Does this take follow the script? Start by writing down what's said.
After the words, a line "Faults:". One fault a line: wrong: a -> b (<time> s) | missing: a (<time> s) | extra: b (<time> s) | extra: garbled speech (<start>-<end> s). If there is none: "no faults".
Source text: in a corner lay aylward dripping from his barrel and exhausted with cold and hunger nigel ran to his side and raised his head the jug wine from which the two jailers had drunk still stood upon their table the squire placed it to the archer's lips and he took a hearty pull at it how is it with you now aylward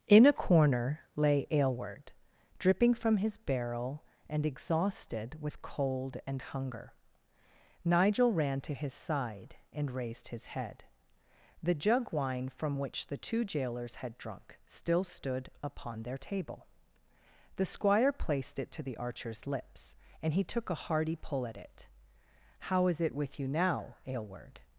in a corner lay aylward dripping from his barrel and exhausted with cold and hunger nigel ran to his side and raised his head the jug wine from which the two jailers had drunk still stood upon their table the squire placed it to the archer's lips and he took a hearty pull at it how is it with you now aylward
Faults:
no faults